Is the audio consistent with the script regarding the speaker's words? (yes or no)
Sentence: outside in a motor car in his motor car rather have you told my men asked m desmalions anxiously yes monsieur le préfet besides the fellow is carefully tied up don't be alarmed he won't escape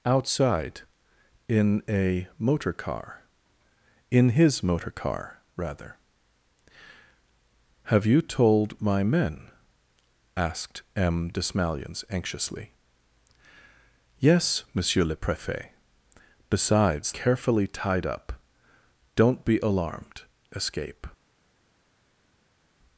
no